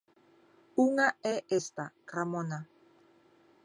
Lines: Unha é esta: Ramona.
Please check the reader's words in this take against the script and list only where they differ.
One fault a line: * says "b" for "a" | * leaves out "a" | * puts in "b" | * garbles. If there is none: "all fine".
all fine